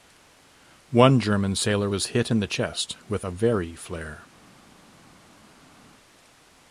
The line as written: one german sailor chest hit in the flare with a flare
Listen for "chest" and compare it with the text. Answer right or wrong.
wrong